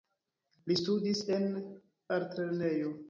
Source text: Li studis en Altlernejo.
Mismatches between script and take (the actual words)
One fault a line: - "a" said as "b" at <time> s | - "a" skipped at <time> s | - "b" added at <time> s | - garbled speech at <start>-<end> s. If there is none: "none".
none